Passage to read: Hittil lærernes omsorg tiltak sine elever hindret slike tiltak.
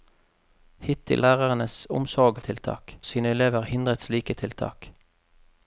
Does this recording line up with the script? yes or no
yes